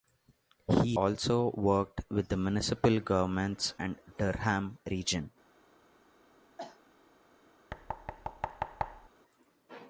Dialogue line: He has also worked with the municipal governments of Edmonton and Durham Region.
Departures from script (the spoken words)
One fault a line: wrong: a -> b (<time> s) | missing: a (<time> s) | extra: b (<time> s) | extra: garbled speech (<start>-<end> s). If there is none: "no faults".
missing: has (0.9 s)
missing: of Edmonton (3.7 s)